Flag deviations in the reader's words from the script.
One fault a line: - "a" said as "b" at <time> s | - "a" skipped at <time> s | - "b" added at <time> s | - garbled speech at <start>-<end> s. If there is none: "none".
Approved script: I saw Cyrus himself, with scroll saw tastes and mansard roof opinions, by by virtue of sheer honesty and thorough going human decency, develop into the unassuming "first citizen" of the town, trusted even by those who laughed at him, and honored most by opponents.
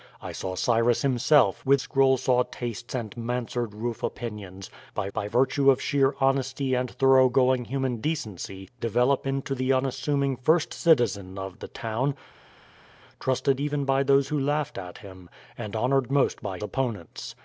none